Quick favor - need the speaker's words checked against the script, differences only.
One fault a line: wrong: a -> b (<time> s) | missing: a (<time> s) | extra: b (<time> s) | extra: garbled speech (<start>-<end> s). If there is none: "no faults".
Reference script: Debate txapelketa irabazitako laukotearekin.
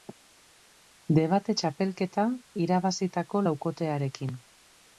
no faults